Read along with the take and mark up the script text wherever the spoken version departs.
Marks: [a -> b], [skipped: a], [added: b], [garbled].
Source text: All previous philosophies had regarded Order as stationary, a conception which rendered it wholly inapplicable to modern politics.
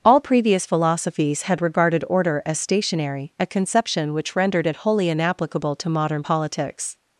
All previous philosophies had regarded Order as stationary, a conception which rendered it wholly inapplicable to modern politics.